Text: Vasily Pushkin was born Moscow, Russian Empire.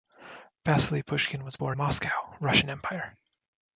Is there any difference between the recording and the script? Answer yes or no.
no